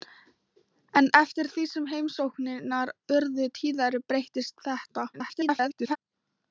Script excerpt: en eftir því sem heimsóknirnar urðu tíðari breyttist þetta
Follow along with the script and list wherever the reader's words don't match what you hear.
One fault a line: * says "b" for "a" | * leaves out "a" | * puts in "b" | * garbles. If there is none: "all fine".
* garbles